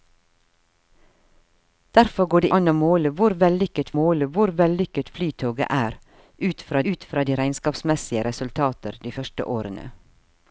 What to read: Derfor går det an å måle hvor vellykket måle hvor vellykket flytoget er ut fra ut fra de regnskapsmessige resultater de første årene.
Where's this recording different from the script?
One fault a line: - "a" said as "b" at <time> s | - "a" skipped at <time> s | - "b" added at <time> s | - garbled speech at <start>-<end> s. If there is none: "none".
none